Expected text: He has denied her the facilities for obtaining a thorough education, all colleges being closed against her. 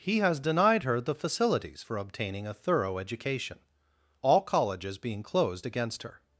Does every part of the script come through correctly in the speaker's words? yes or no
yes